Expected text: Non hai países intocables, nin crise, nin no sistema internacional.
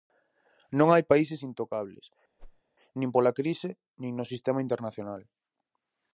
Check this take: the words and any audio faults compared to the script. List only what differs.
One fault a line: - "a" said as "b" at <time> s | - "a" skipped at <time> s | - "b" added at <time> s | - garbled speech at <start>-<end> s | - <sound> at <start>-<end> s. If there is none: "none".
- whoosh at 2.4-2.6 s
- "pola" added at 3.1 s